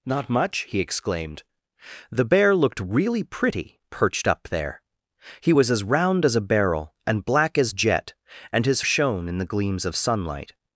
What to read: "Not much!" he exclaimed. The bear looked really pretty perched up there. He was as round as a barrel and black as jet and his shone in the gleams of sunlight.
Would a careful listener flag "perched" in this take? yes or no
no